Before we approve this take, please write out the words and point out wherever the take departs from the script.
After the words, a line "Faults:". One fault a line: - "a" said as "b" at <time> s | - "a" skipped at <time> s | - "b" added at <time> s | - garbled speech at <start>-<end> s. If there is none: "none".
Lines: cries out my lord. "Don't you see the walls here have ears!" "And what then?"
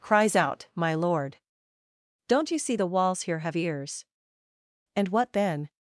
cries out my lord. "Don't you see the walls here have ears!" "And what then?"
Faults:
none